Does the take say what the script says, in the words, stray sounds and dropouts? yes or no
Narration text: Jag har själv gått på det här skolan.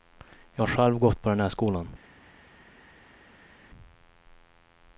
no